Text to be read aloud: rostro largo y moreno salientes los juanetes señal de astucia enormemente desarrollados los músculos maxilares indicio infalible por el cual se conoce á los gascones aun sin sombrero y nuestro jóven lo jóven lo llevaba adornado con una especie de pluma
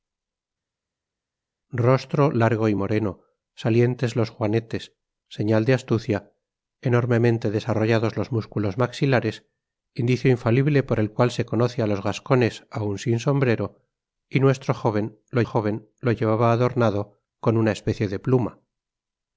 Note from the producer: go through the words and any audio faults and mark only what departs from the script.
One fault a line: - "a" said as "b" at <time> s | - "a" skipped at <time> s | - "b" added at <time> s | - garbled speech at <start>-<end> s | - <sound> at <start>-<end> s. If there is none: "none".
none